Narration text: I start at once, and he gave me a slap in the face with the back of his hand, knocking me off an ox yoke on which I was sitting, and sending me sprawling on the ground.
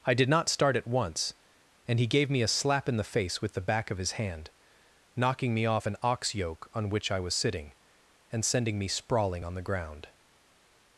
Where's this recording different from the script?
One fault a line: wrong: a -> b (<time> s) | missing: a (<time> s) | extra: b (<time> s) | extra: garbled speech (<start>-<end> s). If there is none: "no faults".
extra: did not (0.1 s)